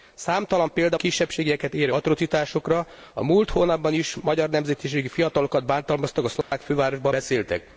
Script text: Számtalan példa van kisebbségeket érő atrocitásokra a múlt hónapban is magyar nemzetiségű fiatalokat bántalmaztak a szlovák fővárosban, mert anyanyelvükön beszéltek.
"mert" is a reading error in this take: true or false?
true